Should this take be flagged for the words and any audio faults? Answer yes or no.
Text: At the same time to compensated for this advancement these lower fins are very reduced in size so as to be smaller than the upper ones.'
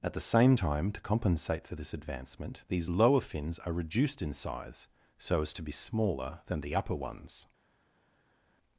yes